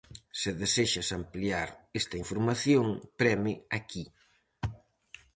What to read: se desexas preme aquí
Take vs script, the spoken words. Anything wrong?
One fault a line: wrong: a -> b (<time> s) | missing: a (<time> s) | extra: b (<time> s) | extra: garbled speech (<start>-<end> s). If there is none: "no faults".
extra: ampliar esta información (1.2 s)